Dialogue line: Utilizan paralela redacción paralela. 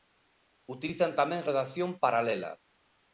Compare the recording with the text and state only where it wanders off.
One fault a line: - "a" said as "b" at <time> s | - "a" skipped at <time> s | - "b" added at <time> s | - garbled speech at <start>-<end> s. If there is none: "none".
- "paralela" said as "tamén" at 1.2 s